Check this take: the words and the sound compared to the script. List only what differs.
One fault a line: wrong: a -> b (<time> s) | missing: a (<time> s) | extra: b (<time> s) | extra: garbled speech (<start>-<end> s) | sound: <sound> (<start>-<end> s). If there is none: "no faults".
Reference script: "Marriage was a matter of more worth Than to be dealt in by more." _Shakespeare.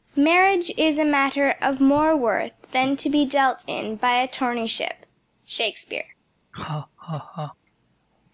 wrong: was -> is (0.8 s)
wrong: more -> attorneyship (4.3 s)
sound: laugh (6.5-7.6 s)